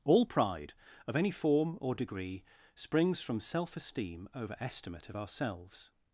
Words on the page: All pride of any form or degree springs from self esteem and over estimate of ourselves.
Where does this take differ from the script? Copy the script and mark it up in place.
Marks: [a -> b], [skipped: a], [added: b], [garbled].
All pride of any form or degree springs from self esteem [skipped: and] over estimate of ourselves.